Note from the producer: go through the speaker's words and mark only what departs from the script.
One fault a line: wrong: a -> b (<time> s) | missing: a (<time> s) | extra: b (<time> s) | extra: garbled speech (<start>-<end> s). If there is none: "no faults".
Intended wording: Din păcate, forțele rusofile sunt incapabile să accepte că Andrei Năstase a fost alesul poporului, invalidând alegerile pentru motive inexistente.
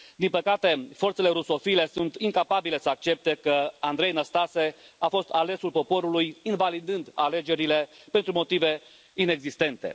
no faults